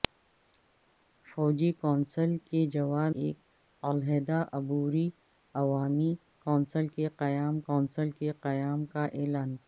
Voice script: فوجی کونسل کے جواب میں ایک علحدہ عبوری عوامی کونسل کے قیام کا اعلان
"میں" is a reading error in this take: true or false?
true